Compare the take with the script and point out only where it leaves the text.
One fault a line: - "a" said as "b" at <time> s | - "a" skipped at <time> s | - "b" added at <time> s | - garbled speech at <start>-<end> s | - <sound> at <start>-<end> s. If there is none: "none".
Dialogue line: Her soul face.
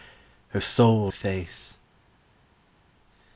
none